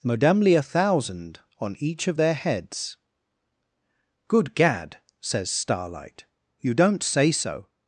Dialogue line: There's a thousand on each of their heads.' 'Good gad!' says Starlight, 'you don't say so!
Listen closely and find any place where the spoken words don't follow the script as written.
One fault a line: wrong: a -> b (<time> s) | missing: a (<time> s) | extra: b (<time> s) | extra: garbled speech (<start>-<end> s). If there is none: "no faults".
wrong: There's -> Modemly (0.0 s)